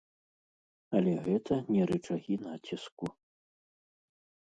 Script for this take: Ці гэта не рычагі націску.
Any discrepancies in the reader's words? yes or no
yes